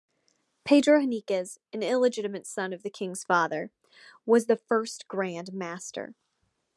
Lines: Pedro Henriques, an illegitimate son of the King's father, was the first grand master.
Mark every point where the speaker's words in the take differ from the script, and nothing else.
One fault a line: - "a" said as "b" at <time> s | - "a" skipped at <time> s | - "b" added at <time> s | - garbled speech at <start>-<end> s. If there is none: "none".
none